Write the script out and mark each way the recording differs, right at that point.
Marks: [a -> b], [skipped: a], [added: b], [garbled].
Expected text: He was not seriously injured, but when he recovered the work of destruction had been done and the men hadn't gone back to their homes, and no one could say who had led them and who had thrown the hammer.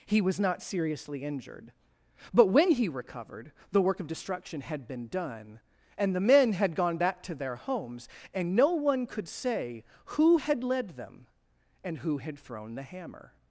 He was not seriously injured, but when he recovered the work of destruction had been done and the men [hadn't -> had] gone back to their homes, and no one could say who had led them and who had thrown the hammer.